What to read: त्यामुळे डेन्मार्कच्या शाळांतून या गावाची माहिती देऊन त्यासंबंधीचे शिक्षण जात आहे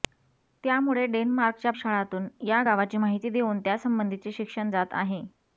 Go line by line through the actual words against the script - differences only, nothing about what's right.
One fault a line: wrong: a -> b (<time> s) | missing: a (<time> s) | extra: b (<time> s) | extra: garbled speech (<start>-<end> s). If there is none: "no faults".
no faults